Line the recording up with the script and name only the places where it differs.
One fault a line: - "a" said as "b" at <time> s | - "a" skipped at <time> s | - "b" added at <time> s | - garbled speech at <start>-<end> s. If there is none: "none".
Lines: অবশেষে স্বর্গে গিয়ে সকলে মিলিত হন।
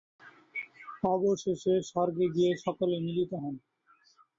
none